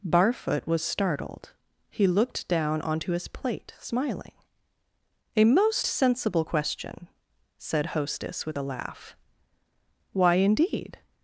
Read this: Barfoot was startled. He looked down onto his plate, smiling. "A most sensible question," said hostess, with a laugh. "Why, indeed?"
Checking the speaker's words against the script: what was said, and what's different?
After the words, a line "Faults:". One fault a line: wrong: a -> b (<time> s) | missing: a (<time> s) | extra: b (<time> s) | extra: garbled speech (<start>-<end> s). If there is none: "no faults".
Barfoot was startled. He looked down onto his plate, smiling. "A most sensible question," said hostess, with a laugh. "Why, indeed?"
Faults:
no faults